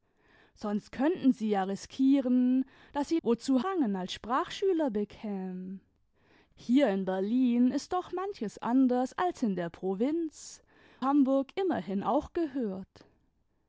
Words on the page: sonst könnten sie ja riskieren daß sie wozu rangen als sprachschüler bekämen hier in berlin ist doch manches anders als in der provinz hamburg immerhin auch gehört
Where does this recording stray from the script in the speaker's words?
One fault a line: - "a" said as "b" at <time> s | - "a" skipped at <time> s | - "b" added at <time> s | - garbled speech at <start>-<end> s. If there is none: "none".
none